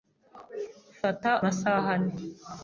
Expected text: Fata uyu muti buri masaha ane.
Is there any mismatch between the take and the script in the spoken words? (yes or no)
yes